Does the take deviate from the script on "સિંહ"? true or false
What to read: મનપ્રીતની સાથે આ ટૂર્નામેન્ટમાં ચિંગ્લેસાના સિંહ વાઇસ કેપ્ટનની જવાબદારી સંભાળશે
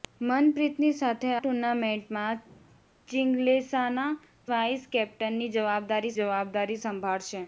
true